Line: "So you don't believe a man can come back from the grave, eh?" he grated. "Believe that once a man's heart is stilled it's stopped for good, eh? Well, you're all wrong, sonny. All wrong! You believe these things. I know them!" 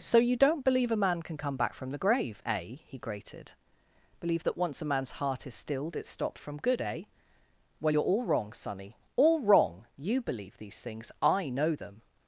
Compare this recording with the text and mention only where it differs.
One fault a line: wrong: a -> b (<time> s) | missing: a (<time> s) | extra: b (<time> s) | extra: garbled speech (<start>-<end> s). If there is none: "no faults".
wrong: for -> from (6.4 s)